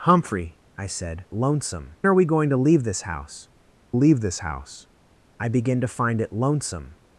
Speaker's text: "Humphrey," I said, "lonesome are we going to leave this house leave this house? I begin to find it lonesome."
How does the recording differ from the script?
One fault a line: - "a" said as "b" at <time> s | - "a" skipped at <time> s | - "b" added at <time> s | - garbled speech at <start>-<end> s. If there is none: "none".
none